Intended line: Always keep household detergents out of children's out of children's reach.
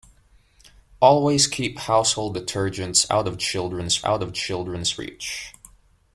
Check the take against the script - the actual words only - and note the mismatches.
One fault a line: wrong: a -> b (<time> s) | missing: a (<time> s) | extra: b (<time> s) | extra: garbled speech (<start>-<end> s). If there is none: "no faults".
no faults